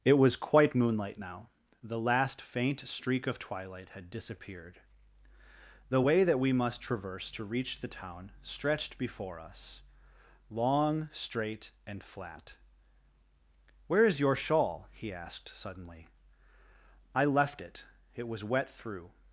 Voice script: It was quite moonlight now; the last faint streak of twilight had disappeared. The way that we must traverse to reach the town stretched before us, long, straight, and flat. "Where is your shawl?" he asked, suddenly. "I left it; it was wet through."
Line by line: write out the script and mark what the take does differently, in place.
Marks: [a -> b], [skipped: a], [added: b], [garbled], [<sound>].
It was quite moonlight now; the last faint streak of twilight had disappeared. The way that we must traverse to reach the town stretched before us, long, straight, and flat. "Where is your shawl?" he asked, suddenly. "I left it; it was wet through."